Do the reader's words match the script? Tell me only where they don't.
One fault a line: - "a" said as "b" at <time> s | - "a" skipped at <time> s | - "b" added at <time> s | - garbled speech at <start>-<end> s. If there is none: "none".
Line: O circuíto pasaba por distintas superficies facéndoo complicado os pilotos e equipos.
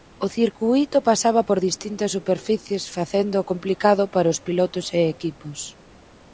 - "para" added at 4.1 s